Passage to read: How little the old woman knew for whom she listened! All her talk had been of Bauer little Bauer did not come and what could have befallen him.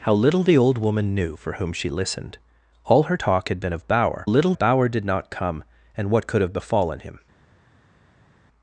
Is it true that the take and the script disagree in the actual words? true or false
false